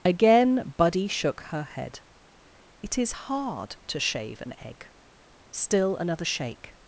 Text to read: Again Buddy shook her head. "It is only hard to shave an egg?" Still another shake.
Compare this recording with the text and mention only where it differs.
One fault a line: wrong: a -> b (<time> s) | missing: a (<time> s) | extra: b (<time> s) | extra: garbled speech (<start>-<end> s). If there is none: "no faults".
missing: only (3.1 s)